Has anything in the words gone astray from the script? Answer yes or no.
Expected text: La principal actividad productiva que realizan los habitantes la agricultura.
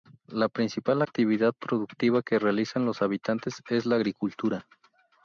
yes